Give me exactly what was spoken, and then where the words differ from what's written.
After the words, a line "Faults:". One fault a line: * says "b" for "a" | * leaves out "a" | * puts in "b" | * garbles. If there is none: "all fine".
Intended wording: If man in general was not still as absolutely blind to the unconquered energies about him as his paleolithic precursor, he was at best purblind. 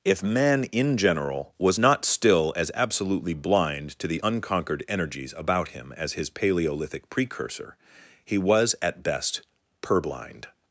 If man in general was not still as absolutely blind to the unconquered energies about him as his paleolithic precursor, he was at best purblind.
Faults:
all fine